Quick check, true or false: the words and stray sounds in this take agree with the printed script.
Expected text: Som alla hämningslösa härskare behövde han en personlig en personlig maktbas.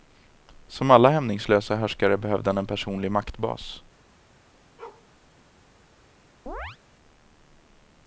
false